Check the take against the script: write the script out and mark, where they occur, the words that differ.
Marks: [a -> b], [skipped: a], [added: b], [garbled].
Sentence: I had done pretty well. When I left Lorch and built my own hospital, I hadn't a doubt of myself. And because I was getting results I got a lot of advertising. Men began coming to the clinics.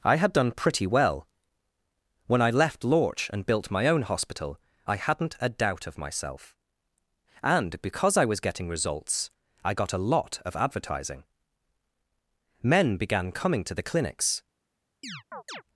I had done pretty well. When I left Lorch and built my own hospital, I hadn't a doubt of myself. And because I was getting results I got a lot of advertising. Men began coming to the clinics.